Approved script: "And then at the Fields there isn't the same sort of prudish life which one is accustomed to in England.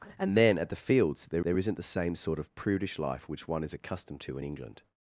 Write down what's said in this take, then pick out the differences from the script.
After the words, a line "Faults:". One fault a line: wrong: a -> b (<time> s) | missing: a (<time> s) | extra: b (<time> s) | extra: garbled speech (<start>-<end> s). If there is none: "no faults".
"And then at the Fields there there isn't the same sort of prudish life which one is accustomed to in England.
Faults:
extra: there (1.4 s)